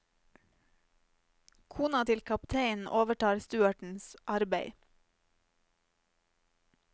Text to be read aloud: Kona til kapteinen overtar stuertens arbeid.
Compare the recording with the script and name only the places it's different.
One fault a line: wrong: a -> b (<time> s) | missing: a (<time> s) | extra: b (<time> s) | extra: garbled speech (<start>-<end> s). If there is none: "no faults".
no faults